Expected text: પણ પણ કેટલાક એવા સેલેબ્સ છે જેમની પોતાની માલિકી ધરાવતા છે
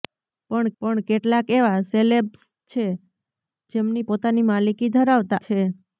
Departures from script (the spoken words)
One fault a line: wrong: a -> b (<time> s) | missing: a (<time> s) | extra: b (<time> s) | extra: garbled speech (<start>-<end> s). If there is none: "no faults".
no faults